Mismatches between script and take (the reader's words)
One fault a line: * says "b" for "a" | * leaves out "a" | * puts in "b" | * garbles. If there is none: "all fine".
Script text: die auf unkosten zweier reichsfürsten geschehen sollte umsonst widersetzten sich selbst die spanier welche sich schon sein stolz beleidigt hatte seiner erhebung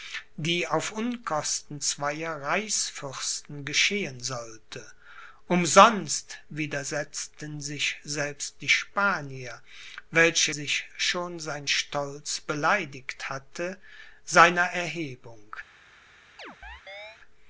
all fine